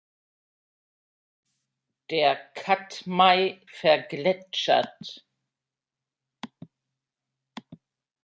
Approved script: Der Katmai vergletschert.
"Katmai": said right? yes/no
yes